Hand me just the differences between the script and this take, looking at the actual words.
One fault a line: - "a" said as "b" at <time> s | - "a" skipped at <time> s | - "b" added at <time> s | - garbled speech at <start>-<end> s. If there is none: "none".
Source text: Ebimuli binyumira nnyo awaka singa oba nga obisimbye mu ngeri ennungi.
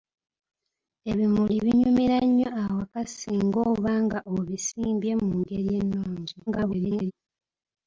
- garbled speech at 6.5-7.1 s